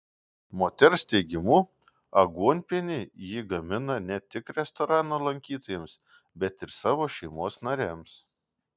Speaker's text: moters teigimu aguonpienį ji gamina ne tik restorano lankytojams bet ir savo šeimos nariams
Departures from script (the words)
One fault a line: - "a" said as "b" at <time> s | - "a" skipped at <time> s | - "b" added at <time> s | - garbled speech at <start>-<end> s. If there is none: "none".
none